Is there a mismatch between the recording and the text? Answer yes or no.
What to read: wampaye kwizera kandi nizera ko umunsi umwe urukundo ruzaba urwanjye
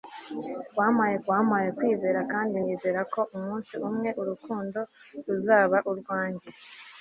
yes